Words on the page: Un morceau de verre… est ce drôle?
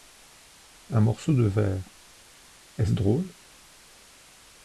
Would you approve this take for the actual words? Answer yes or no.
yes